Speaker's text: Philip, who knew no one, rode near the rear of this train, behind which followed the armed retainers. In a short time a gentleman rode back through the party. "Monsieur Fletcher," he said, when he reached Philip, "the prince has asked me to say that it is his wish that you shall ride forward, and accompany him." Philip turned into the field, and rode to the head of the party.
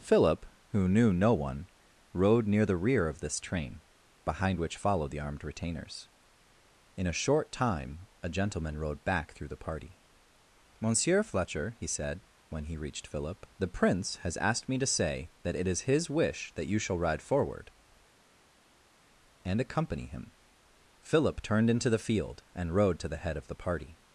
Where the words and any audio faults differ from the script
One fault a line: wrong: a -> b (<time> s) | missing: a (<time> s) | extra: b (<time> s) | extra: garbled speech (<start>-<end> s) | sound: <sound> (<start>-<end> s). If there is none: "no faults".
no faults